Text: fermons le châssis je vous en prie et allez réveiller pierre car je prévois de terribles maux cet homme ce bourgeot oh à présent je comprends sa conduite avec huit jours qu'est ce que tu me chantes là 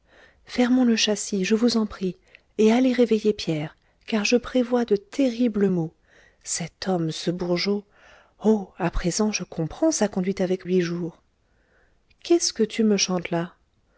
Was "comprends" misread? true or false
false